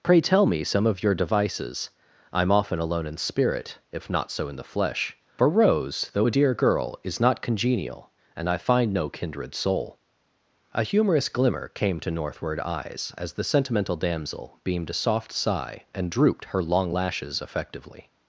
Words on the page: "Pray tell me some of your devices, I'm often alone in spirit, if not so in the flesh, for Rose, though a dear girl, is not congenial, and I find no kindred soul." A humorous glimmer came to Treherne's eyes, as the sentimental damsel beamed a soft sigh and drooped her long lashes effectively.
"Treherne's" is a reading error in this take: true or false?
true